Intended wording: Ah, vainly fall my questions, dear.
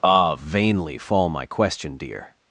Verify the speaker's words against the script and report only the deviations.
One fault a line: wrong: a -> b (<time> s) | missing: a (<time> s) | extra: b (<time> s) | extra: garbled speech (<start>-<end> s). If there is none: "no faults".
wrong: questions -> question (1.4 s)